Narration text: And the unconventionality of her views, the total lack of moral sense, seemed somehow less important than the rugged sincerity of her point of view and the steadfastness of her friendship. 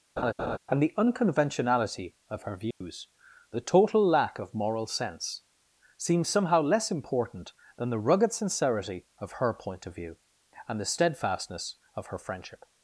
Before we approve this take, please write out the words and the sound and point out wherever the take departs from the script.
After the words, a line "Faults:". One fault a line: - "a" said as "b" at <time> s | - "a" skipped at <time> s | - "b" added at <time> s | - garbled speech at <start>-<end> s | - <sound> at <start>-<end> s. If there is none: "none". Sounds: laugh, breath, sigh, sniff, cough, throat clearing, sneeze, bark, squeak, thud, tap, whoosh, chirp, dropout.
And the unconventionality of her views, the total lack of moral sense, seems somehow less important than the rugged sincerity of her point of view and the steadfastness of her friendship.
Faults:
- laugh at 0.2-0.6 s
- dropout at 2.7-2.8 s
- "seemed" said as "seems" at 6.0 s